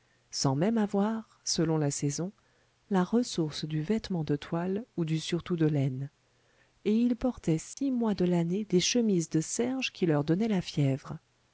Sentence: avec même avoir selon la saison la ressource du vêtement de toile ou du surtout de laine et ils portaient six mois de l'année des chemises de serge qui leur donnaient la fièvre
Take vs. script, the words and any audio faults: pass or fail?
fail